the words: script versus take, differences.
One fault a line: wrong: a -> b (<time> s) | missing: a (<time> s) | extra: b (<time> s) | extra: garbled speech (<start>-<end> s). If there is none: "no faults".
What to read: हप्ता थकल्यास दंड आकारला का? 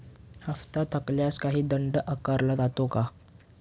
extra: काही (1.4 s)
extra: जातो (2.6 s)